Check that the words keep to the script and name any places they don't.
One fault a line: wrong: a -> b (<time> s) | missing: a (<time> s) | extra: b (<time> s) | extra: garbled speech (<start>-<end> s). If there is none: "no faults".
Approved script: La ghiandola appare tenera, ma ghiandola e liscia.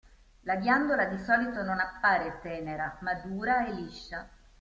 extra: di solito non (1.1 s)
wrong: ghiandola -> dura (3.1 s)